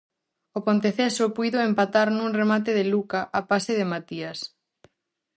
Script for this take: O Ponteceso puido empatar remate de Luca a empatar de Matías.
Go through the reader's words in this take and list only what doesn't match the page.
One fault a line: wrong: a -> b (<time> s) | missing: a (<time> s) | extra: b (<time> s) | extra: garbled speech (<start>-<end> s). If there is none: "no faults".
extra: nun (2.2 s)
wrong: empatar -> pase (3.5 s)